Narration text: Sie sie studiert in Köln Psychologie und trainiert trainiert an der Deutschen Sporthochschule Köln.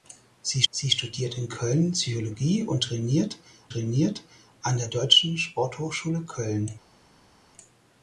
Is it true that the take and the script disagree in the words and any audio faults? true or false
false